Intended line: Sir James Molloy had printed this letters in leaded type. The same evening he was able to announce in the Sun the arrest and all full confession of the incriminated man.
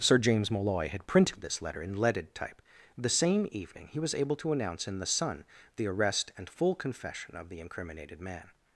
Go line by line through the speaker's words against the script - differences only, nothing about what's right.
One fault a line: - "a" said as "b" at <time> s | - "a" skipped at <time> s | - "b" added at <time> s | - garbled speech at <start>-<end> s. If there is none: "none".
- "letters" said as "letter" at 1.6 s
- "all" skipped at 6.5 s